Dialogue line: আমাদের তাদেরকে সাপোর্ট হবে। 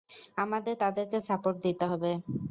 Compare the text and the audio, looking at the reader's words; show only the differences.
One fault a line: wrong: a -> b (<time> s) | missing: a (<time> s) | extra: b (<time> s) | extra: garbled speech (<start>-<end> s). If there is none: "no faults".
extra: দিতে (1.6 s)